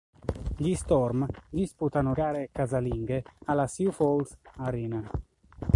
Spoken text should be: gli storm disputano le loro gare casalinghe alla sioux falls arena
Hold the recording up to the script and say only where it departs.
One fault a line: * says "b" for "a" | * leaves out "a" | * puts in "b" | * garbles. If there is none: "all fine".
* leaves out "le loro"